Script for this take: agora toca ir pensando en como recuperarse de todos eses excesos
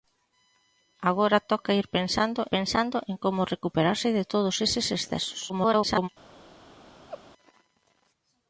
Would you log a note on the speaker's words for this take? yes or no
yes